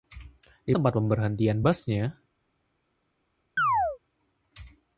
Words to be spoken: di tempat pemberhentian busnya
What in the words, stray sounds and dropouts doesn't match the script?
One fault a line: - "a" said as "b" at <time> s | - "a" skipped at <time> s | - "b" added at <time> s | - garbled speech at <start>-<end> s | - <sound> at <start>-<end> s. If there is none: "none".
- chirp at 3.6-4.0 s